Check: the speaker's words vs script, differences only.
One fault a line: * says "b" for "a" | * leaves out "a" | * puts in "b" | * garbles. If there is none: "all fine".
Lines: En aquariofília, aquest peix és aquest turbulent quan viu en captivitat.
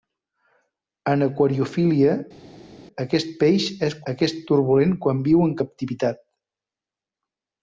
all fine